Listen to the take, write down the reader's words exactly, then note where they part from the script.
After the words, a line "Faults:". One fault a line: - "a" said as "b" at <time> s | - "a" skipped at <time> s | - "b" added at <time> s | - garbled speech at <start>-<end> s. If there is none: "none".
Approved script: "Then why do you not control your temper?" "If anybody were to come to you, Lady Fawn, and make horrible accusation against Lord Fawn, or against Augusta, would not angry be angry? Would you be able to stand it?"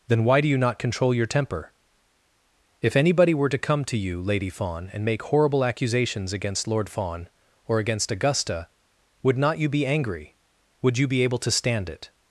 "Then why do you not control your temper?" "If anybody were to come to you, Lady Fawn, and make horrible accusations against Lord Fawn, or against Augusta, would not you be angry? Would you be able to stand it?"
Faults:
- "accusation" said as "accusations" at 5.7 s
- "angry" said as "you" at 9.6 s